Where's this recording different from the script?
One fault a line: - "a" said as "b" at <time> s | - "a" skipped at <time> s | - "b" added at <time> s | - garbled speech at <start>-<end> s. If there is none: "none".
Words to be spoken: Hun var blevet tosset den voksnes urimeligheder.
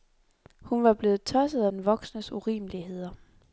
none